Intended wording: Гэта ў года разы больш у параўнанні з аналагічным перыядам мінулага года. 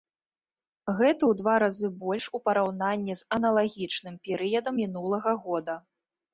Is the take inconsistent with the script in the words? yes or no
yes